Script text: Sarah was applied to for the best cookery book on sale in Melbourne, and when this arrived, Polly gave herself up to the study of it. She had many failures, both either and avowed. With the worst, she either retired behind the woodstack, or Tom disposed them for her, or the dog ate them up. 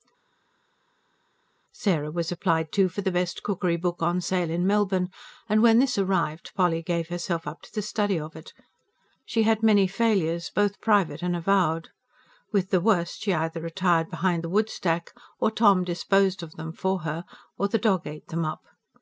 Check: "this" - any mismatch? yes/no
no